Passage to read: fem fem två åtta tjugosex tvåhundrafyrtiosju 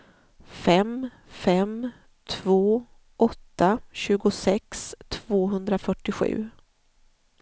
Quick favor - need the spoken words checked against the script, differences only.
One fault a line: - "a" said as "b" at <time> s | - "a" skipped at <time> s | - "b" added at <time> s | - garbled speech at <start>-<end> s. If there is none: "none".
none